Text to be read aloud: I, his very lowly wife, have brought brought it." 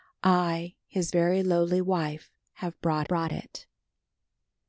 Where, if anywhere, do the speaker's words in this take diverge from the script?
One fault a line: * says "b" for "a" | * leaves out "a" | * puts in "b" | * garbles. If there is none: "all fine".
all fine